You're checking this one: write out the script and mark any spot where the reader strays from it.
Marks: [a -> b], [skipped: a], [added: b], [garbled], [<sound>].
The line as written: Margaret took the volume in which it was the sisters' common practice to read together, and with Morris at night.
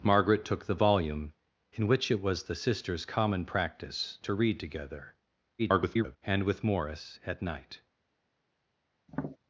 Margaret took the volume in which it was the sisters' common practice to read together, [garbled] and with Morris at night. [tap]